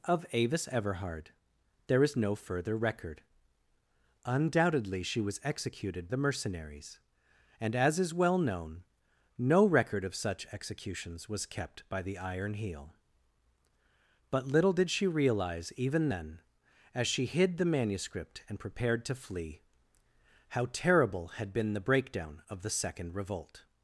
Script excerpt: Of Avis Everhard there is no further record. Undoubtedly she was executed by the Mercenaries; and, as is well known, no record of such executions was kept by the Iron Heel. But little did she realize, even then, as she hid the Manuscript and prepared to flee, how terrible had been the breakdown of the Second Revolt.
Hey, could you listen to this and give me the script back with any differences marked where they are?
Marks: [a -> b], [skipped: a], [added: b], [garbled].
Of Avis Everhard there is no further record. Undoubtedly she was executed [skipped: by] the Mercenaries; and, as is well known, no record of such executions was kept by the Iron Heel. But little did she realize, even then, as she hid the Manuscript and prepared to flee, how terrible had been the breakdown of the Second Revolt.